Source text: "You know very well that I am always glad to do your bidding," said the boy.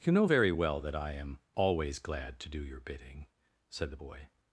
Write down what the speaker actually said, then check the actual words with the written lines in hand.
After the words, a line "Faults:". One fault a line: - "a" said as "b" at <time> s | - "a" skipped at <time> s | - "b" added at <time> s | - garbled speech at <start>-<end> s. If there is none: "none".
"You know very well that I am always glad to do your bidding," said the boy.
Faults:
none